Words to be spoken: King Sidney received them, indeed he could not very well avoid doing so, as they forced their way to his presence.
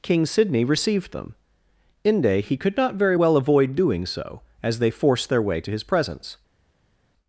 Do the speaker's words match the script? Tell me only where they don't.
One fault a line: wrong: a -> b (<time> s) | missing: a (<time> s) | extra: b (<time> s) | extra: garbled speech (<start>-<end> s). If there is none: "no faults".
wrong: indeed -> inde (2.0 s)